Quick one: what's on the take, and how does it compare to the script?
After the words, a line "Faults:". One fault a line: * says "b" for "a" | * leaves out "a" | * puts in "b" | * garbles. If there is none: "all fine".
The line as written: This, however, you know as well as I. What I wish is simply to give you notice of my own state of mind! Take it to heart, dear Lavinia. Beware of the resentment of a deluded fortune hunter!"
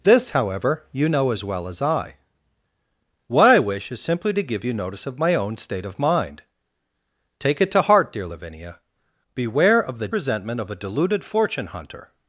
This, however, you know as well as I. What I wish is simply to give you notice of my own state of mind! Take it to heart, dear Lavinia. Beware of the resentment of a deluded fortune hunter!"
Faults:
all fine